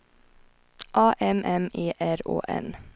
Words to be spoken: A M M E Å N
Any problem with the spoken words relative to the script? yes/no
yes